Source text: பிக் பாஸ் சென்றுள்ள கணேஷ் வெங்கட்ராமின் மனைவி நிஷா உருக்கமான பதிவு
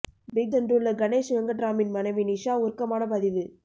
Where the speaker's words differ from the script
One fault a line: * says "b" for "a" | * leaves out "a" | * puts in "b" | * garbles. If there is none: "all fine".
* leaves out "பாஸ்"